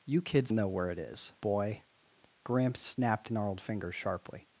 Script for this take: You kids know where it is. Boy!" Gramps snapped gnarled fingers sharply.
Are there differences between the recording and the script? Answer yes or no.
no